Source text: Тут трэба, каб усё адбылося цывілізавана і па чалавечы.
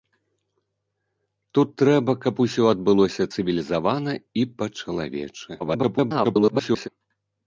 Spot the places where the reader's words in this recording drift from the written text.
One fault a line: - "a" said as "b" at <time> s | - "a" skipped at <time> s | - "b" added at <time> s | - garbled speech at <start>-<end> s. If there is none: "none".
- garbled speech at 5.6-6.9 s